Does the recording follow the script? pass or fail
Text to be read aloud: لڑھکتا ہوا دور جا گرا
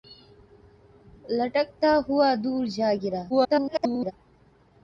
fail